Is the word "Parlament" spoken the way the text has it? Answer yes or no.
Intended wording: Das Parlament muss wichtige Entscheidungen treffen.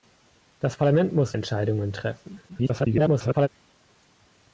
yes